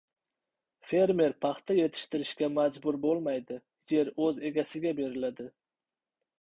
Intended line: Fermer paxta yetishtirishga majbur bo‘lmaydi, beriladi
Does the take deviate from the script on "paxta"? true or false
false